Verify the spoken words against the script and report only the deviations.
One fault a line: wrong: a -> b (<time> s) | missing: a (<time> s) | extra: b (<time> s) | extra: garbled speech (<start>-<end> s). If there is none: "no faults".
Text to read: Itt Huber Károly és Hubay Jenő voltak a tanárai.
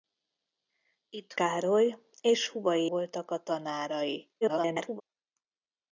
missing: Huber (1.3 s)
missing: Jenő (2.9 s)
extra: garbled speech (4.4-5.0 s)